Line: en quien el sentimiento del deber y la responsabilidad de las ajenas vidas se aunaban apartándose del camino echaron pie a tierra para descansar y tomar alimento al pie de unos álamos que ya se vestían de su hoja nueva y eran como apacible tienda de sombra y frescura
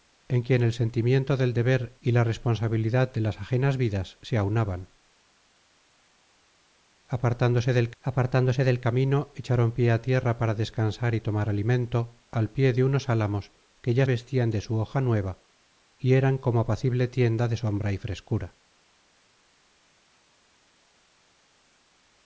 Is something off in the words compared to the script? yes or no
yes